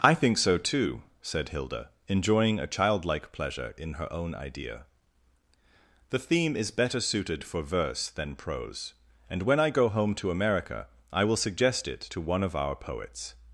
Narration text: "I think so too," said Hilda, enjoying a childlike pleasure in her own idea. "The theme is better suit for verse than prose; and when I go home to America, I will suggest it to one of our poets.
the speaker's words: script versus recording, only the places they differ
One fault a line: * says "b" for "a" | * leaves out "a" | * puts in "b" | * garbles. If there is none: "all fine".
* says "suited" for "suit"